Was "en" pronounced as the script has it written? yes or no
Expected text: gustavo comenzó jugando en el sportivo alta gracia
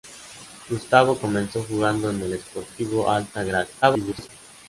yes